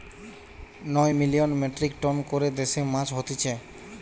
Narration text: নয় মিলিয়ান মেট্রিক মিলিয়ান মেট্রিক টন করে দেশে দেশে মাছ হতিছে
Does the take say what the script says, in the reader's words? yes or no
no